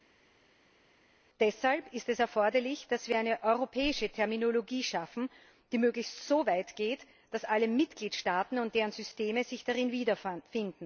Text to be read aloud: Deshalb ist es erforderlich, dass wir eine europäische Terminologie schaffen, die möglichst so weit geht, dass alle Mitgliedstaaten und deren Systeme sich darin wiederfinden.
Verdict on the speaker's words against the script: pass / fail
pass